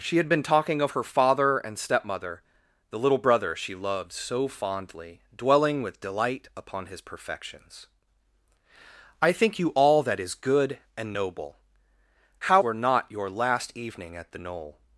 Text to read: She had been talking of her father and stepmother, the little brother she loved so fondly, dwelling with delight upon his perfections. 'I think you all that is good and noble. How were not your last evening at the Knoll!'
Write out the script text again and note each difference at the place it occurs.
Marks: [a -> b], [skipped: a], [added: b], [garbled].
She had been talking of her father and stepmother, the little brother she loved so fondly, dwelling with delight upon his perfections. 'I think you all that is good and noble. How were not your last evening at the Knoll!'